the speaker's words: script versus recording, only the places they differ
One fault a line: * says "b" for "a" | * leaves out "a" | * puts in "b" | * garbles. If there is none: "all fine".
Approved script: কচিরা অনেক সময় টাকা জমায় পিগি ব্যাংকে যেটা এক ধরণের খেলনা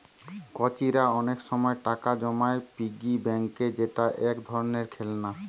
all fine